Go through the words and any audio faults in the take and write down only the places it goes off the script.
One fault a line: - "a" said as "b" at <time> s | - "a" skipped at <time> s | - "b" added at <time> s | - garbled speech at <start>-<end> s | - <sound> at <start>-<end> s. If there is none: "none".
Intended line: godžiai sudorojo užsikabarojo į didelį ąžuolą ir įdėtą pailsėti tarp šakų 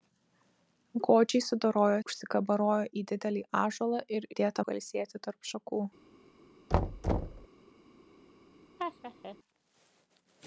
- thud at 6.7-7.5 s
- laugh at 8.8-9.4 s